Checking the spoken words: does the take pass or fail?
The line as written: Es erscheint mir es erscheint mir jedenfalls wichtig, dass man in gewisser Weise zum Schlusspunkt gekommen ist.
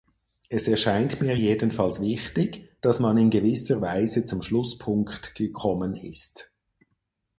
fail